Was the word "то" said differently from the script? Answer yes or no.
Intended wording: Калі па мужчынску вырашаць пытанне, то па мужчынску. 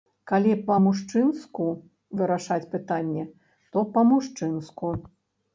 no